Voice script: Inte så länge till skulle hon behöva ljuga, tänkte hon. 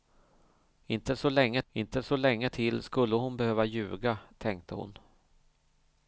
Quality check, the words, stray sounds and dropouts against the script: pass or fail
fail